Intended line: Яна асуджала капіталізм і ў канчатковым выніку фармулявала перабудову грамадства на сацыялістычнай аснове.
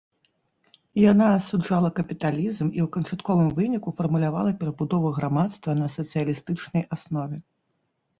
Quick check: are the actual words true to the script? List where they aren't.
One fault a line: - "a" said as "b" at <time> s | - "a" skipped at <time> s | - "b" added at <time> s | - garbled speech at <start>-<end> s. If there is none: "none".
none